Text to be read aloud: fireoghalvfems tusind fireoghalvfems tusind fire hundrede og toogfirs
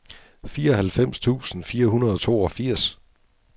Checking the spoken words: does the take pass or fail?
fail